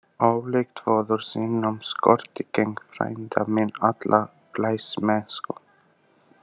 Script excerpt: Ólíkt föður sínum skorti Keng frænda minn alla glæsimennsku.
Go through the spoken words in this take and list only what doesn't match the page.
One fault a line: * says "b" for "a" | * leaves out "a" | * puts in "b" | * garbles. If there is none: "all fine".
all fine